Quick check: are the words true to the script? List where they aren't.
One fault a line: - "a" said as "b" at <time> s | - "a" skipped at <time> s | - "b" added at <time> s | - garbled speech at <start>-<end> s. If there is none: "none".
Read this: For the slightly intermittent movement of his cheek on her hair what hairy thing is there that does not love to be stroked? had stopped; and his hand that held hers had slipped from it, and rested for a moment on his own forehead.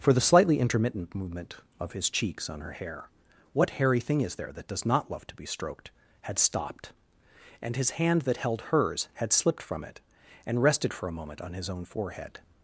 - "cheek" said as "cheeks" at 2.1 s